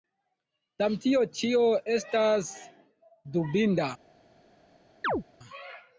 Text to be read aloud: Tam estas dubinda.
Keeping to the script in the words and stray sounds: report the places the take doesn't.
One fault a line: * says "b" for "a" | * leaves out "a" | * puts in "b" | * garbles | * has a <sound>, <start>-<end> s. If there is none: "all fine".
* puts in "tio ĉio"
* has a chirp, 5.0-5.2 s